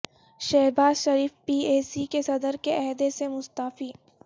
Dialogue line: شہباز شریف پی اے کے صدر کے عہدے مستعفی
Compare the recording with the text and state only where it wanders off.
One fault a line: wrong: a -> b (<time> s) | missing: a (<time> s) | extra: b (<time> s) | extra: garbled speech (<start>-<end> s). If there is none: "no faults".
extra: سی (1.8 s)
extra: سے (3.1 s)